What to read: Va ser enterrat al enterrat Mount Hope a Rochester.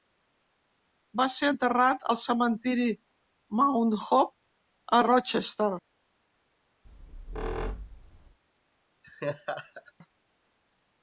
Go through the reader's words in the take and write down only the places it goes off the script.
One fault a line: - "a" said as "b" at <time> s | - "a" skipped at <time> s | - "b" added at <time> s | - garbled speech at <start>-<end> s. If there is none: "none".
- "enterrat" said as "cementiri" at 2.2 s